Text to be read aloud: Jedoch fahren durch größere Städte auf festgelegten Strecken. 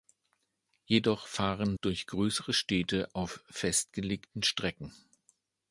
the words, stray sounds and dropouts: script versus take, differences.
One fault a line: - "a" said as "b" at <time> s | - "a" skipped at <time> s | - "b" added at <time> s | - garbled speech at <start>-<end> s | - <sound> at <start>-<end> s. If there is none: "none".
none